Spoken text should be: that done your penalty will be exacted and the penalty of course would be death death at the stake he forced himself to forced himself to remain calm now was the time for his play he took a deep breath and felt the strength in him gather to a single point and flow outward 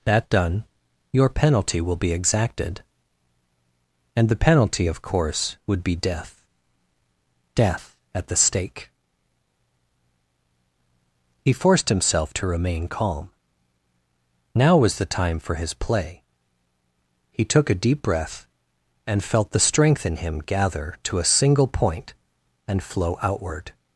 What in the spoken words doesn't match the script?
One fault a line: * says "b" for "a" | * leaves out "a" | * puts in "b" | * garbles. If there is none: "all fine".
* leaves out "forced himself to"